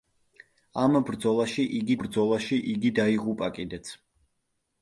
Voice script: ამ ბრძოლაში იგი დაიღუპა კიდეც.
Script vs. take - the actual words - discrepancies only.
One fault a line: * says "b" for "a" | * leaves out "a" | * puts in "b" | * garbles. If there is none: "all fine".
* puts in "ბრძოლაში იგი"